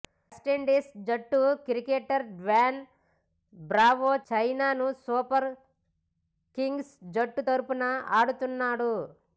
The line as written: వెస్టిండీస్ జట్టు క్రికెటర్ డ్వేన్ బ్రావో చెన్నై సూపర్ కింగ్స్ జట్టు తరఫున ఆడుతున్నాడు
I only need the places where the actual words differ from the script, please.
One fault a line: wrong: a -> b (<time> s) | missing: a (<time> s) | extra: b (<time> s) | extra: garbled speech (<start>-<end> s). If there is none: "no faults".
no faults